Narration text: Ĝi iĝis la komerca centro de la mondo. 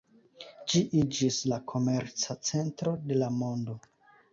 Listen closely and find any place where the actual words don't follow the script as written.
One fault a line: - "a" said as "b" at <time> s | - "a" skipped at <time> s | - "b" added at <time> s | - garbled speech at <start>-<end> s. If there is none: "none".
none